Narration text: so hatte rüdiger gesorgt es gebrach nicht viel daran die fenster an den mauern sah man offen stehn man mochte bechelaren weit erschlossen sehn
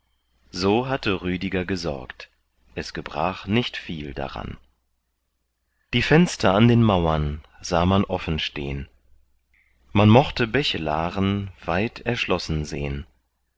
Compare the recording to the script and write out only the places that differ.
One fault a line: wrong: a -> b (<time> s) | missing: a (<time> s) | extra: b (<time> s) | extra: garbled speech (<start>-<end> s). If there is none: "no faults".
no faults